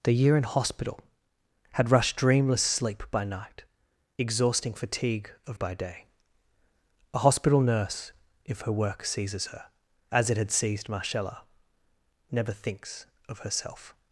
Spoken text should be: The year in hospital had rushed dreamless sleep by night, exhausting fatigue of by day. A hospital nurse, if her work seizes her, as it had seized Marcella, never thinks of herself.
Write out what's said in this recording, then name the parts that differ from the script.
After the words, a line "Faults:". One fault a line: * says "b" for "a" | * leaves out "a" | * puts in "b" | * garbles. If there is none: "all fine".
The year in hospital had rushed dreamless sleep by night, exhausting fatigue of by day. A hospital nurse, if her work seizes her, as it had seized Marcella, never thinks of herself.
Faults:
all fine